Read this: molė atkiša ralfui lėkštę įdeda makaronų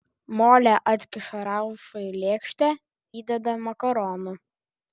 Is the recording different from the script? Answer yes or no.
no